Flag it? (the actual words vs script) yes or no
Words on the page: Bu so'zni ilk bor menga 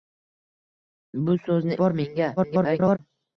yes